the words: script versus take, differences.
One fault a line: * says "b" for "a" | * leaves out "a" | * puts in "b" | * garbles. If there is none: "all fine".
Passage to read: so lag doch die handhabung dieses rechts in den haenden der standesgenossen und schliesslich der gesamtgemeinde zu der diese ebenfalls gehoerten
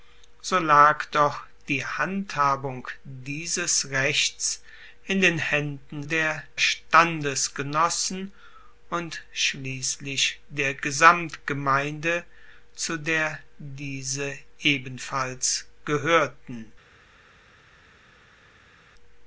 all fine